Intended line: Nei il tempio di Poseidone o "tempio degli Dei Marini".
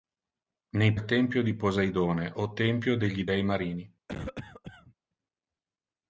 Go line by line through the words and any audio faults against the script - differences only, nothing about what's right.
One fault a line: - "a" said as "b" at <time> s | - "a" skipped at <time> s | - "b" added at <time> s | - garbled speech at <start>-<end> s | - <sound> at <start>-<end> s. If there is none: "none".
- cough at 4.1-4.9 s